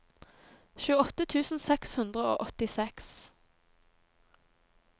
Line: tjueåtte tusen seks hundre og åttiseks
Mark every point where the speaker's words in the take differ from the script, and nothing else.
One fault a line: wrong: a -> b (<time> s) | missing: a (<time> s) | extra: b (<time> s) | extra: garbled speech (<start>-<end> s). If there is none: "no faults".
no faults